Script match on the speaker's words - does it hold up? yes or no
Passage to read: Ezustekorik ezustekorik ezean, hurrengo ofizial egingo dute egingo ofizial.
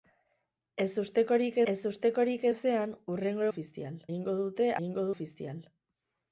yes